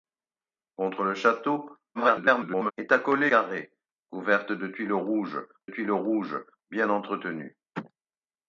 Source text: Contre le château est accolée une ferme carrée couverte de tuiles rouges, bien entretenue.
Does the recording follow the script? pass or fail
fail